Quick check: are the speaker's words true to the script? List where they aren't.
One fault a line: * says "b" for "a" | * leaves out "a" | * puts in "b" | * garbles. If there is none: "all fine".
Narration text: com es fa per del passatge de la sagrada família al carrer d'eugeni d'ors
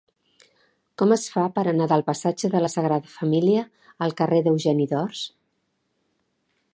* puts in "anar"